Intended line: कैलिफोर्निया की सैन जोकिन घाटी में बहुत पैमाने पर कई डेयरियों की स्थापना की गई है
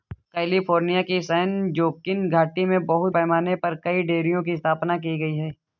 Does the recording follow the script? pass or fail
pass